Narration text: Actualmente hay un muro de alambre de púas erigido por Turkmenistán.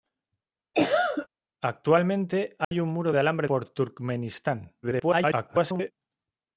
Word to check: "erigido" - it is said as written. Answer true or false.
false